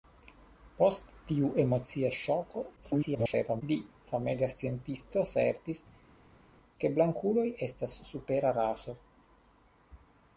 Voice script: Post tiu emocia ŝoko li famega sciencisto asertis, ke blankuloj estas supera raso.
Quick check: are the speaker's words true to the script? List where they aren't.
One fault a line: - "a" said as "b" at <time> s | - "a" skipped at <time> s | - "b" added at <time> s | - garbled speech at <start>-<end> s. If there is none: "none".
- garbled speech at 2.8-3.6 s